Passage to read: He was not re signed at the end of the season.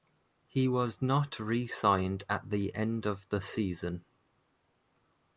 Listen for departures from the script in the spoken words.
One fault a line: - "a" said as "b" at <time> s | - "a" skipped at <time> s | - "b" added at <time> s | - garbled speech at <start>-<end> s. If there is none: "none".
none